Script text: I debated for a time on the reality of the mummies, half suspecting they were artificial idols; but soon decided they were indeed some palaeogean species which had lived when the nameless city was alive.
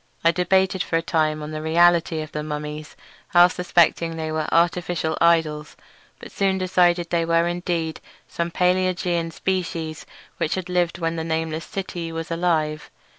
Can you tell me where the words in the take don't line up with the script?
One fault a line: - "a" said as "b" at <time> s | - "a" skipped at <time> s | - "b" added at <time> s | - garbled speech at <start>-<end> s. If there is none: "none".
none